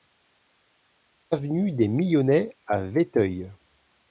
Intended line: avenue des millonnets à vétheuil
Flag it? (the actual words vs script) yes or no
no